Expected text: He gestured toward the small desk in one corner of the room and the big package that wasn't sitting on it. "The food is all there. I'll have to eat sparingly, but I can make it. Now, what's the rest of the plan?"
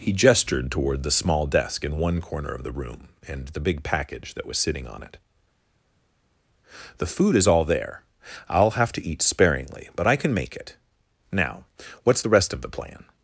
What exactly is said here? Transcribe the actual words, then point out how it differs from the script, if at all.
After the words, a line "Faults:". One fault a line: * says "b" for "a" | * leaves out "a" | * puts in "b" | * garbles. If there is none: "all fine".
He gestured toward the small desk in one corner of the room and the big package that was sitting on it. "The food is all there. I'll have to eat sparingly, but I can make it. Now, what's the rest of the plan?"
Faults:
* says "was" for "wasn't"